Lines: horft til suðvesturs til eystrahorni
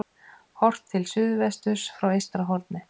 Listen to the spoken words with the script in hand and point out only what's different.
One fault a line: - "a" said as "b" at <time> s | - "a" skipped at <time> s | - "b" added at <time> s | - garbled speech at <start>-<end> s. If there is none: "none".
- "til" said as "frá" at 2.0 s